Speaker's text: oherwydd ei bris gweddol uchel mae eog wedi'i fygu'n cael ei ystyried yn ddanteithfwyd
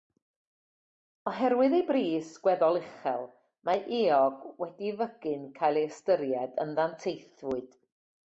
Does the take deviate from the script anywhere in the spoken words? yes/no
no